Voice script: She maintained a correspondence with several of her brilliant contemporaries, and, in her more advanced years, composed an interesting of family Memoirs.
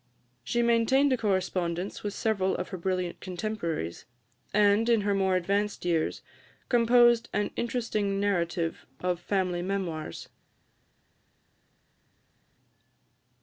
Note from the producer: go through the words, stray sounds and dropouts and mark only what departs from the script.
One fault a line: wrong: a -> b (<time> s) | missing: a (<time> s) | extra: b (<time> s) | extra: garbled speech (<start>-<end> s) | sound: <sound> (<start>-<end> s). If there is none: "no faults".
extra: narrative (8.2 s)